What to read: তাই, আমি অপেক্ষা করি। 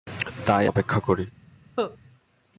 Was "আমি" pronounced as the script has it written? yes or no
no